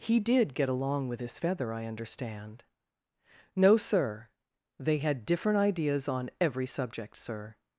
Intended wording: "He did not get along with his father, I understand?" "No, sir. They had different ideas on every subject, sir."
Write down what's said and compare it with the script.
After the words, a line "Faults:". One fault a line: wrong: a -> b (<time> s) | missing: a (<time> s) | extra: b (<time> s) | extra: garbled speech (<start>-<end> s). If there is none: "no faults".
"He did get along with his feather, I understand?" "No, sir. They had different ideas on every subject, sir."
Faults:
missing: not (0.6 s)
wrong: father -> feather (1.4 s)